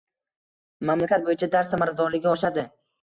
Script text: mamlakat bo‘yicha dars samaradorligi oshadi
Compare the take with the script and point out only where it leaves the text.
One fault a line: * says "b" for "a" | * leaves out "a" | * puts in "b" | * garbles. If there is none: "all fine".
all fine